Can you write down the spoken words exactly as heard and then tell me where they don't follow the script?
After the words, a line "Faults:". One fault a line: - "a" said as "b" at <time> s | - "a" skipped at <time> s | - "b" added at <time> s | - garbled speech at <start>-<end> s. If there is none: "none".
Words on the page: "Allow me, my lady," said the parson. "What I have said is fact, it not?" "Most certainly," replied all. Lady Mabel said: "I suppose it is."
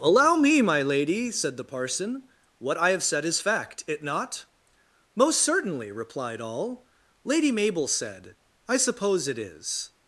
"Allow me, my lady," said the parson. "What I have said is fact, it not?" "Most certainly," replied all. Lady Mabel said: "I suppose it is."
Faults:
none